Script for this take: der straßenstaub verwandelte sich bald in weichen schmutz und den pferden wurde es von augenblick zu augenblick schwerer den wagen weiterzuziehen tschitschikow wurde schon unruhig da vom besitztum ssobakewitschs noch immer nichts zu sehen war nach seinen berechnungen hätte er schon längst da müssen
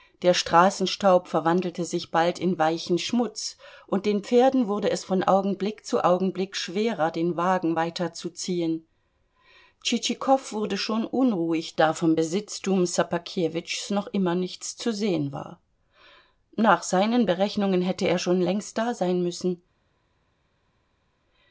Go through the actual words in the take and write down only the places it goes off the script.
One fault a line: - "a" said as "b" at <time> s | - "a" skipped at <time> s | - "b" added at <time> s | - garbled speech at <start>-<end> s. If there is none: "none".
- "sein" added at 18.9 s